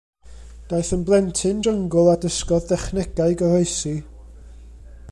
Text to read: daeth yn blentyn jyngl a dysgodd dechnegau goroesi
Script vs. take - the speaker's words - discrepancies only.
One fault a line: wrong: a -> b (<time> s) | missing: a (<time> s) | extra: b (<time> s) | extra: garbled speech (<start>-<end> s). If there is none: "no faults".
no faults